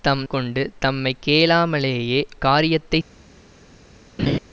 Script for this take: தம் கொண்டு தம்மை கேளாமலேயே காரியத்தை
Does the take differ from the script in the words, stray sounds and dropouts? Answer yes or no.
yes